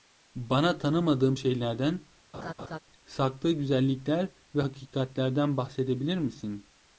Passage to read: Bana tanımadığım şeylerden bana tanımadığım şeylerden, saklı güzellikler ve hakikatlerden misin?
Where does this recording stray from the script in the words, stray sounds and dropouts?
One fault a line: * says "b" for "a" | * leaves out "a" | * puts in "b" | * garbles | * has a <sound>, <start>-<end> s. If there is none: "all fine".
* leaves out "bana tanımadığım şeylerden"
* has a laugh, 2.3-2.8 s
* puts in "bahsedebilir"